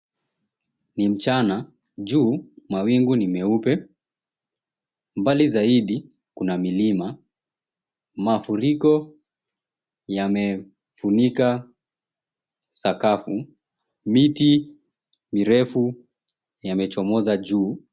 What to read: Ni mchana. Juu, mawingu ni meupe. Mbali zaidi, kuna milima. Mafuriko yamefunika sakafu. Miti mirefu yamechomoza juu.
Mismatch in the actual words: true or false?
false